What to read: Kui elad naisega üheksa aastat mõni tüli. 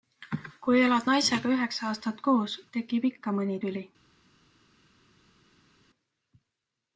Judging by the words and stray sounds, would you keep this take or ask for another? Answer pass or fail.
fail